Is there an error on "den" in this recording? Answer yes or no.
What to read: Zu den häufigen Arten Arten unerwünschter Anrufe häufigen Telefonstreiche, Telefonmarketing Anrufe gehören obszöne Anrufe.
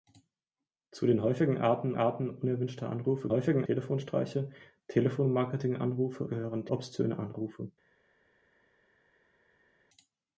no